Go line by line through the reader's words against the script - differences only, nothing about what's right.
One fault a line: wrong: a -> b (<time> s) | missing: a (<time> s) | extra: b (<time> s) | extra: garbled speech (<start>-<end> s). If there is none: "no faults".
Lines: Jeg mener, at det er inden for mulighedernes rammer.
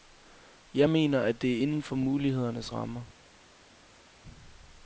no faults